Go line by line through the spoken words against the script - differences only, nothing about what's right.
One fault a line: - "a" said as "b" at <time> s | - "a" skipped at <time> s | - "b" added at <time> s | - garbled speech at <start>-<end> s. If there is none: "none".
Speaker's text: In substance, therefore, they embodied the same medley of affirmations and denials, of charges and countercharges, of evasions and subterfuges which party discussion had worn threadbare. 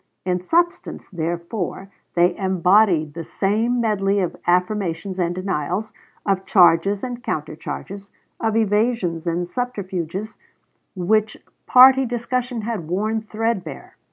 none